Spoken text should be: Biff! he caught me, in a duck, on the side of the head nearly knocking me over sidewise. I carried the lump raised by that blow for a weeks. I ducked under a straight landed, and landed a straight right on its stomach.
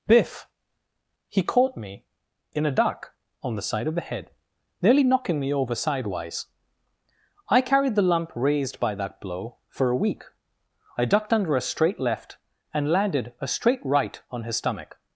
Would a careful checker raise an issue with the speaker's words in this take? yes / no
yes